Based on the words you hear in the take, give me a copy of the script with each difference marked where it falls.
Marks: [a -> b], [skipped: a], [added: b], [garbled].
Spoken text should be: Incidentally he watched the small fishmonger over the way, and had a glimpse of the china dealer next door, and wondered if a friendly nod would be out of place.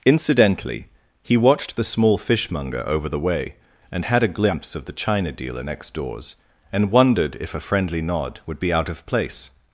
Incidentally he watched the small fishmonger over the way, and had a glimpse of the china dealer next [door, -> doors] and wondered if a friendly nod would be out of place.